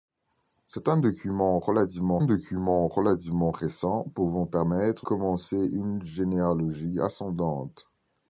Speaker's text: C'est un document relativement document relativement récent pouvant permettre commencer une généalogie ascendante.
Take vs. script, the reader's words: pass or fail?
pass